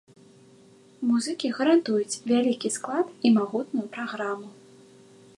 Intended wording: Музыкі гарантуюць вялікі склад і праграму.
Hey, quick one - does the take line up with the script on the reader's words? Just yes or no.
no